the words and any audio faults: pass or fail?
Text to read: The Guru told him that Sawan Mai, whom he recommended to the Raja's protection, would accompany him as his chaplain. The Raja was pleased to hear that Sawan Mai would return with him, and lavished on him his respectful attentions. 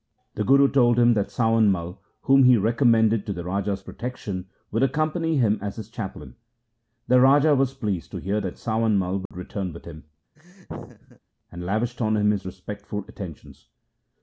fail